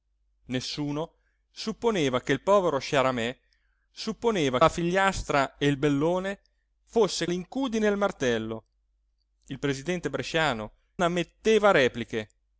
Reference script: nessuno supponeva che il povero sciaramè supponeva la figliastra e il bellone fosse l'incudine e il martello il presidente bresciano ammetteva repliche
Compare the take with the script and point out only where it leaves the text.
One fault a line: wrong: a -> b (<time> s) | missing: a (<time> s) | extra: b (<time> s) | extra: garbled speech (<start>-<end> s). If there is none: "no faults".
no faults